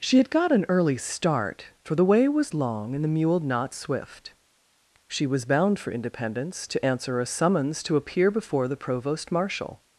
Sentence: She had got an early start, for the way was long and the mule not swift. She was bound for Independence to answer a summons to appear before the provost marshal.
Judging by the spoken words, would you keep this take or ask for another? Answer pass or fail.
pass